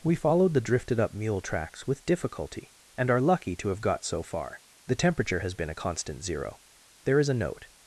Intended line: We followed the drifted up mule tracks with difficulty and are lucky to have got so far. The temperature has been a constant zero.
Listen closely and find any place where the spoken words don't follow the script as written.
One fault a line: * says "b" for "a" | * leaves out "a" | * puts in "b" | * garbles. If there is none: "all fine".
* puts in "There is a note"